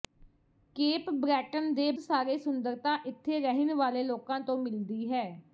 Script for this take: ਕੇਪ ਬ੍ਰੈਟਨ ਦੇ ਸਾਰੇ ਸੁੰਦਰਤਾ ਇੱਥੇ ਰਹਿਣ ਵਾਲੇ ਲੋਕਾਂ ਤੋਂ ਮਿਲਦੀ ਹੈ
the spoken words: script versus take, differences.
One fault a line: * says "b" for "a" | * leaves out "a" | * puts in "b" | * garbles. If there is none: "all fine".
all fine